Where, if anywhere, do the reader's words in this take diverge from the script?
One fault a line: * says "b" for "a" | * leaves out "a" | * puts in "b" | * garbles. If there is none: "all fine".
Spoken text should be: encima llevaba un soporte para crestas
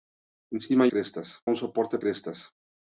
* says "crestas" for "llevaba"
* leaves out "para"